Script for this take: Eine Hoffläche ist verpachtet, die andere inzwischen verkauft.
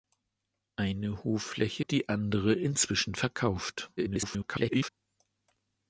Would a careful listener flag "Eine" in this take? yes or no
no